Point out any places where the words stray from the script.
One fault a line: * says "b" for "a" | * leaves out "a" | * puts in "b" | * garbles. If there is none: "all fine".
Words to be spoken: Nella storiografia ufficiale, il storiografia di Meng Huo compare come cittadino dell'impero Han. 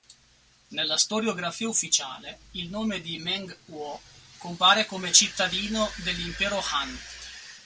* says "nome" for "storiografia"